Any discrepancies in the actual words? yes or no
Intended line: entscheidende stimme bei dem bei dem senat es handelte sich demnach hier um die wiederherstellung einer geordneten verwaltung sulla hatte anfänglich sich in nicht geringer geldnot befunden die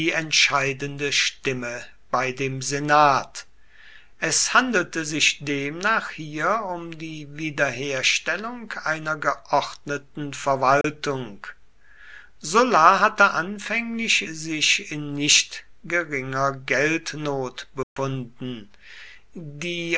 yes